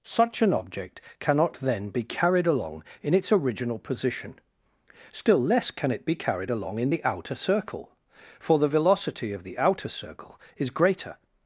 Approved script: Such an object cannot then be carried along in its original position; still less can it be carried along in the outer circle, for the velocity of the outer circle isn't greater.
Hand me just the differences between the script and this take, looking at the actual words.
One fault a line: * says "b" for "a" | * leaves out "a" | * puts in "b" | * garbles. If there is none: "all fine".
* says "is" for "isn't"